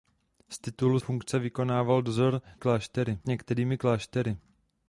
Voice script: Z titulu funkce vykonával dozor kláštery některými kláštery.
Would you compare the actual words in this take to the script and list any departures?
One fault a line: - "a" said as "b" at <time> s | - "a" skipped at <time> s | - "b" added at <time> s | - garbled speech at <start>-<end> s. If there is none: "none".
none